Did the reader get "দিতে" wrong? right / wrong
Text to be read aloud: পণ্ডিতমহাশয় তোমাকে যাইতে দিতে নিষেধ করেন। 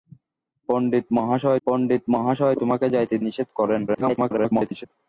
wrong